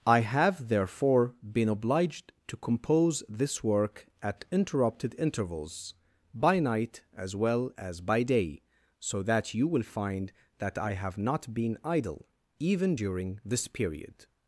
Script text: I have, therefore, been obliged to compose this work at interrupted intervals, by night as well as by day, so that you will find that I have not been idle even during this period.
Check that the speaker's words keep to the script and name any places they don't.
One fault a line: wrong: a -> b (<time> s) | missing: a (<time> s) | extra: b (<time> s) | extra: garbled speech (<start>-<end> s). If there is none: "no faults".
no faults